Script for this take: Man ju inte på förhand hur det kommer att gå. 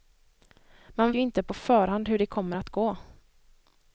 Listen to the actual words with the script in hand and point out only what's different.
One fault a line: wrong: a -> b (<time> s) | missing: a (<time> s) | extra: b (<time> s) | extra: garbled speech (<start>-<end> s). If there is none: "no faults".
no faults